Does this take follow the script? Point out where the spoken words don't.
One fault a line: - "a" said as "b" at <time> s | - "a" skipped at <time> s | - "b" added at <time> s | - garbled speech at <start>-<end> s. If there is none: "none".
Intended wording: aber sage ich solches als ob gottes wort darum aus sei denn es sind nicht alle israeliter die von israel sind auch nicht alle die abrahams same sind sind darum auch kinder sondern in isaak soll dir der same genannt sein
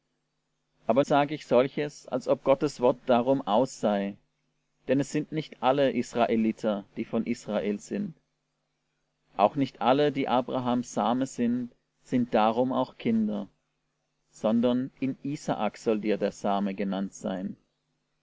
none